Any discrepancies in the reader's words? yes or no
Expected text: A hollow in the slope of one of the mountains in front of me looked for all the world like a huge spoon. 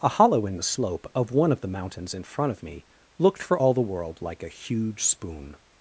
no